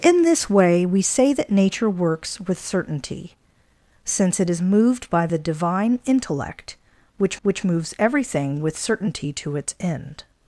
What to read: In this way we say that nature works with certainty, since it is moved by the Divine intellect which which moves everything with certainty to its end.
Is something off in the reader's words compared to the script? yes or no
no